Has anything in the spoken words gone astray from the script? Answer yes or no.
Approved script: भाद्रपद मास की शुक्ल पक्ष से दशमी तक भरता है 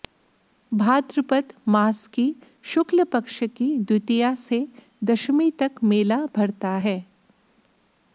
yes